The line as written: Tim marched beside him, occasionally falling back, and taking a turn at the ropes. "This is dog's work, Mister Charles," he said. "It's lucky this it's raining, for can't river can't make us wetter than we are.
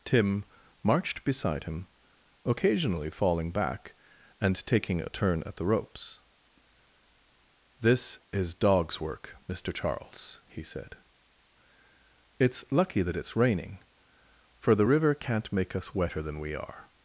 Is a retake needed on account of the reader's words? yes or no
yes